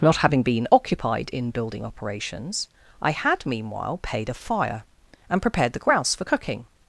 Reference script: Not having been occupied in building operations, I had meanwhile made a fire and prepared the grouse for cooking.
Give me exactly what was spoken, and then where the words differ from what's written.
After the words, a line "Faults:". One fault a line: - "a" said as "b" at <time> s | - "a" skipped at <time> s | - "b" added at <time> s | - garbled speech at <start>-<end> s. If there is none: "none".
Not having been occupied in building operations, I had meanwhile paid a fire and prepared the grouse for cooking.
Faults:
- "made" said as "paid" at 4.0 s